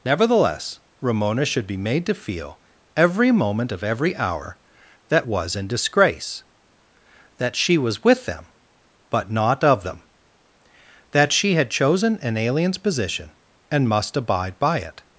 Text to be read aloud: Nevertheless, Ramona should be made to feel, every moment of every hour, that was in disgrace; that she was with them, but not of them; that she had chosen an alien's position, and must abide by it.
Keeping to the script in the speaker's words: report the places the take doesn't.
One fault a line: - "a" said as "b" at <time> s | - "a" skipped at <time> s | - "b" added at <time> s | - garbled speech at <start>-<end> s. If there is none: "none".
none